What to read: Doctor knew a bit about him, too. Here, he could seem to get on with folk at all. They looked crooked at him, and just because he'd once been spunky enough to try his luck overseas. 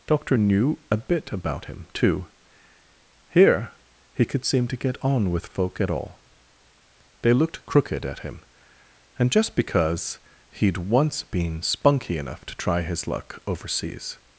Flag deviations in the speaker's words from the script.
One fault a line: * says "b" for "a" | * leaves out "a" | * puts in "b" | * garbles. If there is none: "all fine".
all fine